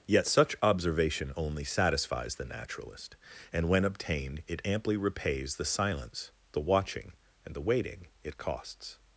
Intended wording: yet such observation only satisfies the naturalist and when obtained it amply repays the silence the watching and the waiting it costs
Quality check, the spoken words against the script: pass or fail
pass